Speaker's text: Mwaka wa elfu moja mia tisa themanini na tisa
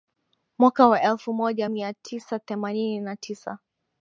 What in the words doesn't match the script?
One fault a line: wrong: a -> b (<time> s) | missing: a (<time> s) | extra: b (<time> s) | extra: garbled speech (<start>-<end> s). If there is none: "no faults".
no faults